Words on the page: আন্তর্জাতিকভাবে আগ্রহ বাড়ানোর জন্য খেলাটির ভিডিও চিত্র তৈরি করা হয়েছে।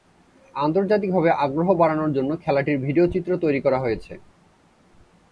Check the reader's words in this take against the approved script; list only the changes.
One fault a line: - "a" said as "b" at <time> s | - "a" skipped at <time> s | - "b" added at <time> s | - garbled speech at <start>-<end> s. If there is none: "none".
none